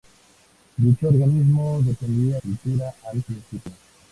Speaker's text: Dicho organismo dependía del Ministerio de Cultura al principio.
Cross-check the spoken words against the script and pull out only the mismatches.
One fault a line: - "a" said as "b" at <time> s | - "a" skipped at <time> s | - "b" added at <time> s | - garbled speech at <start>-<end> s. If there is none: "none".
- "del Ministerio de" skipped at 2.4 s